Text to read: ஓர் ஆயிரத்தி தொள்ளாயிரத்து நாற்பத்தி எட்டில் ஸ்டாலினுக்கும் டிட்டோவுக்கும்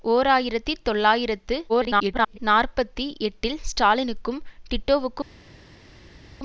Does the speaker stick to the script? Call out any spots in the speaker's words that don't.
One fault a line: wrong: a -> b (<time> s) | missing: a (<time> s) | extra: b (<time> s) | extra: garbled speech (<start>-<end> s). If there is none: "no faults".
extra: garbled speech (1.7-2.4 s)